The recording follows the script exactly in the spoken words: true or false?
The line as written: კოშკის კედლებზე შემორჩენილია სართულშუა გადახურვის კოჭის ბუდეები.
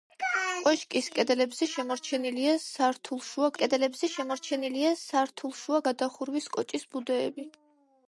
false